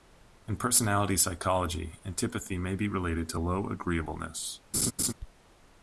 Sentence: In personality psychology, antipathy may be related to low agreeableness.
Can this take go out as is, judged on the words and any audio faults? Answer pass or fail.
fail